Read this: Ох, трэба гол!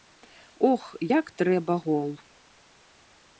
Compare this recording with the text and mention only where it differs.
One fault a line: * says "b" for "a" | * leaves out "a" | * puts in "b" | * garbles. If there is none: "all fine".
* puts in "як"